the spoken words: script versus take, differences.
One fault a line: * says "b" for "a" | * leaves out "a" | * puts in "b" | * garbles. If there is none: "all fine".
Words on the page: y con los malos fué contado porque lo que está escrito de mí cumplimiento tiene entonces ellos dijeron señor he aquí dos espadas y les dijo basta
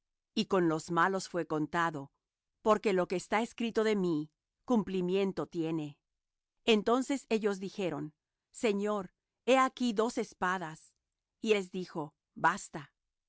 all fine